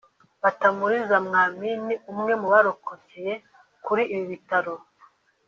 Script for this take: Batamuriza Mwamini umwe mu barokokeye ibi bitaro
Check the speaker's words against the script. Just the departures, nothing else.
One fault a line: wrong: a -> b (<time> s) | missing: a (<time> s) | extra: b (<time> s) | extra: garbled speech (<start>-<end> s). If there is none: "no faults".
extra: kuri (3.8 s)